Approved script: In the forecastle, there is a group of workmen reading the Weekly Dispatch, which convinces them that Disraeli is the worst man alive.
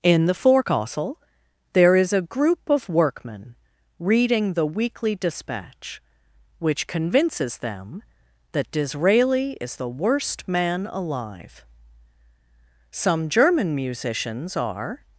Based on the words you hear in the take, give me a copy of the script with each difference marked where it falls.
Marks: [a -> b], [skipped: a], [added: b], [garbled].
In the forecastle, there is a group of workmen reading the Weekly Dispatch, which convinces them that Disraeli is the worst man alive. [added: Some German musicians are]